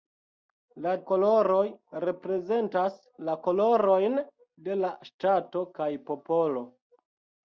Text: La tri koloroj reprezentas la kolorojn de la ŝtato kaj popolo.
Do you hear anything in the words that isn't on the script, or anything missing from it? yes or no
yes